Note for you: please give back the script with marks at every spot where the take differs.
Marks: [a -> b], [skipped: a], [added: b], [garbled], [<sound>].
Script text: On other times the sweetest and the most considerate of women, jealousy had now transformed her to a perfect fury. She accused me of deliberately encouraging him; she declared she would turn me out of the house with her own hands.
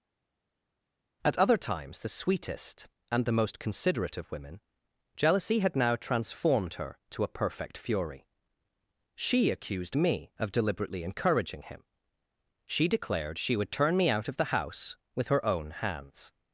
[On -> At] other times the sweetest and the most considerate of women, jealousy had now transformed her to a perfect fury. She accused me of deliberately encouraging him; she declared she would turn me out of the house with her own hands.